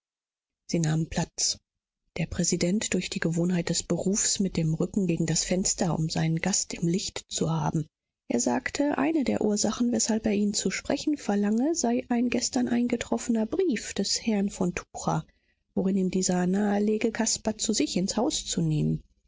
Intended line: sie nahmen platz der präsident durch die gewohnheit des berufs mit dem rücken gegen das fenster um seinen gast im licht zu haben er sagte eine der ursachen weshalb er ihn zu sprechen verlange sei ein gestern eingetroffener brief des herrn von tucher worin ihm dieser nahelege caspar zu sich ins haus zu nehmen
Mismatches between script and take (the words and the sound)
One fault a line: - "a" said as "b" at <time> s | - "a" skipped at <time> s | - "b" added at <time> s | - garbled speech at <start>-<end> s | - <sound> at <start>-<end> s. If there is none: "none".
none